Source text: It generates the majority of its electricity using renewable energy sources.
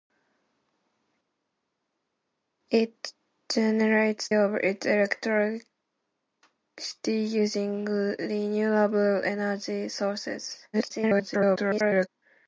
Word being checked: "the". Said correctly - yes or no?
no